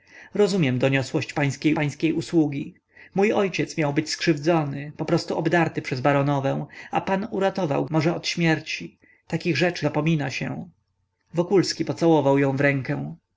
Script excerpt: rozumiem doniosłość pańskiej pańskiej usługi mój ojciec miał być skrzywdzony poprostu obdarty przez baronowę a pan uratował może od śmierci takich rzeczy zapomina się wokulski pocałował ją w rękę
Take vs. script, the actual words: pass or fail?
pass